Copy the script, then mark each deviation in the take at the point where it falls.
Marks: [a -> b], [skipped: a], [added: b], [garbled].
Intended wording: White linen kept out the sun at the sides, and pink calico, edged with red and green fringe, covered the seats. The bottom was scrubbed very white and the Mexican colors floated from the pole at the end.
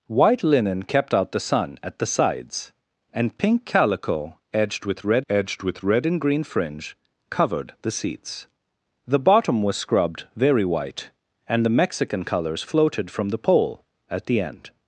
White linen kept out the sun at the sides, and pink calico, edged with red [added: edged with red] and green fringe, covered the seats. The bottom was scrubbed very white and the Mexican colors floated from the pole at the end.